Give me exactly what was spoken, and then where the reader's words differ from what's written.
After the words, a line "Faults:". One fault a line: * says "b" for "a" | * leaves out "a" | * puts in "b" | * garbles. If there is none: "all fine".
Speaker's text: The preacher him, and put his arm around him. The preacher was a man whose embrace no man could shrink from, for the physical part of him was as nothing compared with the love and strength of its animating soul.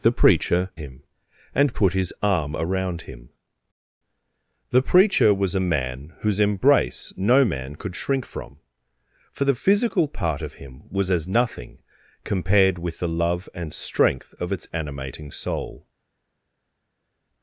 The preacher him, and put his arm around him. The preacher was a man whose embrace no man could shrink from, for the physical part of him was as nothing compared with the love and strength of its animating soul.
Faults:
all fine